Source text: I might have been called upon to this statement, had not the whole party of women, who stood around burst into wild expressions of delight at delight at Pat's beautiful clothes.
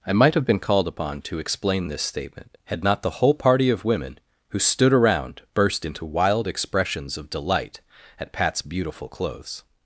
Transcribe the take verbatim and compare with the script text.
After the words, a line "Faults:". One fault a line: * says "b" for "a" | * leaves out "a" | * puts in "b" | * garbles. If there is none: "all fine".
I might have been called upon to explain this statement, had not the whole party of women, who stood around burst into wild expressions of delight at Pat's beautiful clothes.
Faults:
* puts in "explain"
* leaves out "delight at"